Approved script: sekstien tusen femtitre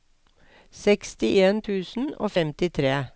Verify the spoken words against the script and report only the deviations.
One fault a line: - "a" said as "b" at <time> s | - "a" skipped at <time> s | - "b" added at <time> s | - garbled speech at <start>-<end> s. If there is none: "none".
- "og" added at 2.2 s